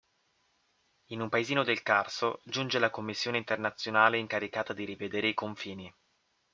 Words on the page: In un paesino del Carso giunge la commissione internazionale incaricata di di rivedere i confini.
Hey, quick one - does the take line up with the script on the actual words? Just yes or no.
no